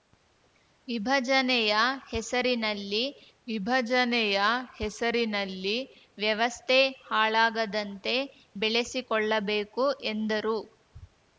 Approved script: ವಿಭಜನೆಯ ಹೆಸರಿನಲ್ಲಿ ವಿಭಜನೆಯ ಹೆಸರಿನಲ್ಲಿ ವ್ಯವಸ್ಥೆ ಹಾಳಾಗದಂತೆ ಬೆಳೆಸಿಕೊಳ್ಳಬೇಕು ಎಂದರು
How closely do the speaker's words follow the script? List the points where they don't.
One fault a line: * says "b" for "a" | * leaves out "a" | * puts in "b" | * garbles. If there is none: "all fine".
all fine